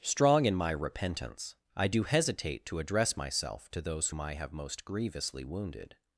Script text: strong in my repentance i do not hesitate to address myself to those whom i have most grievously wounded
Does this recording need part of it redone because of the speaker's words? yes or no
yes